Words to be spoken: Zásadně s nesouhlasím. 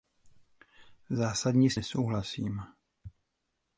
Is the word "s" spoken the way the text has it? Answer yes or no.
yes